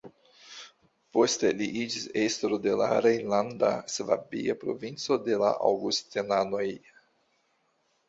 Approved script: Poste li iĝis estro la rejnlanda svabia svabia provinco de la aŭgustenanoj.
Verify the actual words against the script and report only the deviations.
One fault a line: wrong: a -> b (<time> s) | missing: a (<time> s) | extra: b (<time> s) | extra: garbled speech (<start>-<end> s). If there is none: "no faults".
extra: de (2.6 s)
missing: svabia (4.5 s)